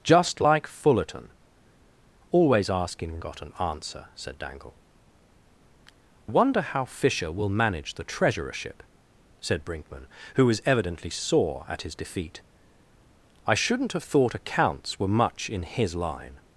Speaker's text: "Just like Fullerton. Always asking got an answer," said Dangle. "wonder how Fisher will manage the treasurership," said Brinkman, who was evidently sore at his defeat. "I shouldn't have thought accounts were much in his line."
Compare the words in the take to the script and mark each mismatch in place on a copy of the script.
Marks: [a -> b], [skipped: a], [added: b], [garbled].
"Just like Fullerton. Always asking got an answer," said Dangle. "wonder how Fisher will manage the treasurership," said Brinkman, who was evidently sore at his defeat. "I shouldn't have thought accounts were much in his line."